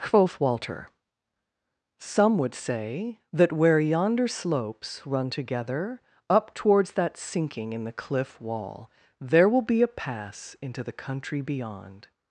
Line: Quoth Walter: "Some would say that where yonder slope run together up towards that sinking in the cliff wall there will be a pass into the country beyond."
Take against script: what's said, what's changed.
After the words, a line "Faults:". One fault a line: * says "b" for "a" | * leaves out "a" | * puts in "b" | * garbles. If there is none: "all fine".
Quoth Walter: "Some would say that where yonder slopes run together up towards that sinking in the cliff wall there will be a pass into the country beyond."
Faults:
* says "slopes" for "slope"